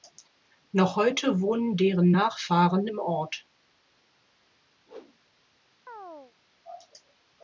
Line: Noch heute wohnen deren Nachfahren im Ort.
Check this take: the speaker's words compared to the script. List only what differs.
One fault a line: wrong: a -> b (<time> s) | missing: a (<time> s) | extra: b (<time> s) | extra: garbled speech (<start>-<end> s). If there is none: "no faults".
no faults